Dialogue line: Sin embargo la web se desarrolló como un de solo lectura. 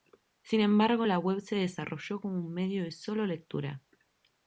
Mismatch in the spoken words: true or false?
true